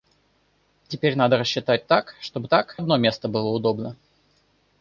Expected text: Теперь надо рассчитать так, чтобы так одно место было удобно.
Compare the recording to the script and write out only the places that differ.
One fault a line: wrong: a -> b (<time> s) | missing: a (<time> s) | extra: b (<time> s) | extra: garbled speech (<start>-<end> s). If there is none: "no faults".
no faults